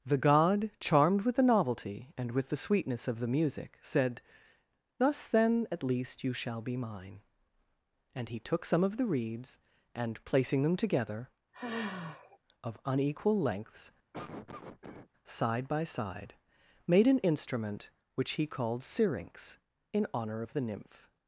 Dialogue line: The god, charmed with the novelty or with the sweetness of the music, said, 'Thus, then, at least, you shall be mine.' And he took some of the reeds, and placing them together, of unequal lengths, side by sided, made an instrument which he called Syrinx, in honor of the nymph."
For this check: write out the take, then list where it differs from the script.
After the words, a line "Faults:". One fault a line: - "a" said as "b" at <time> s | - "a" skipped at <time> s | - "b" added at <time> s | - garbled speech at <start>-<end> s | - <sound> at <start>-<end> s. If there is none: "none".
The god, charmed with the novelty and with the sweetness of the music, said, 'Thus, then, at least, you shall be mine.' And he took some of the reeds, and placing them together, of unequal lengths, side by side, made an instrument which he called Syrinx, in honor of the nymph."
Faults:
- "or" said as "and" at 2.2 s
- sigh at 11.5-12.4 s
- cough at 14.1-15.1 s
- "sided" said as "side" at 15.8 s